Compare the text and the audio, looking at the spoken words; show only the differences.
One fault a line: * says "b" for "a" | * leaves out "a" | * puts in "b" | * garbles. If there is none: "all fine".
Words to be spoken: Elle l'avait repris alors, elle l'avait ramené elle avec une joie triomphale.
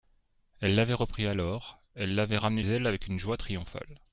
all fine